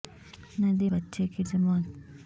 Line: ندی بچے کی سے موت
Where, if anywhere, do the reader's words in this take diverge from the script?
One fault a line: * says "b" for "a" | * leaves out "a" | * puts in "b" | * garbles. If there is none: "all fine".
all fine